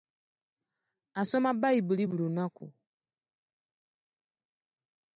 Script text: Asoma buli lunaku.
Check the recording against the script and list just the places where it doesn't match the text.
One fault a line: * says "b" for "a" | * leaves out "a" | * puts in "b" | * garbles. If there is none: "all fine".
* puts in "bayibuli"